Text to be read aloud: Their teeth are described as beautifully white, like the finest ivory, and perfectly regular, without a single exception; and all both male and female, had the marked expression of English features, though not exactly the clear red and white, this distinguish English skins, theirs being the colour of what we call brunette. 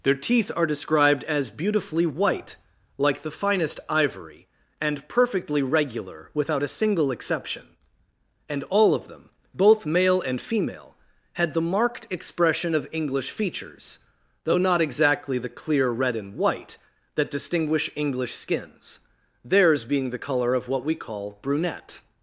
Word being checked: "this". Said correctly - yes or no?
no